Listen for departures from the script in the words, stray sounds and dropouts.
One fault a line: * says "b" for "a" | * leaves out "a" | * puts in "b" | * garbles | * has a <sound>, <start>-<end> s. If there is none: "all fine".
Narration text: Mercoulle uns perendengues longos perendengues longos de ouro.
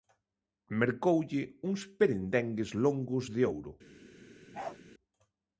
* leaves out "perendengues longos"
* has a bark, 4.5-4.8 s